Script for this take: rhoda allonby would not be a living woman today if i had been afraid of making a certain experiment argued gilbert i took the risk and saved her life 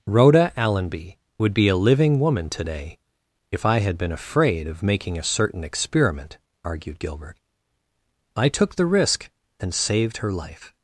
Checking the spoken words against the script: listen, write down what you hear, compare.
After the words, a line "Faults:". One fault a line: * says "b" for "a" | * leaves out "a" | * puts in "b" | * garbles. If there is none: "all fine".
rhoda allonby would be a living woman today if i had been afraid of making a certain experiment argued gilbert i took the risk and saved her life
Faults:
* leaves out "not"